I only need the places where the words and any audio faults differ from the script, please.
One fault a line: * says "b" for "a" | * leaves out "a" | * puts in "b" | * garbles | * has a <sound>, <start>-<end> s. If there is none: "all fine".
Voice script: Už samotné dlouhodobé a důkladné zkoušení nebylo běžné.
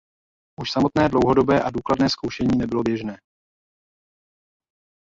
all fine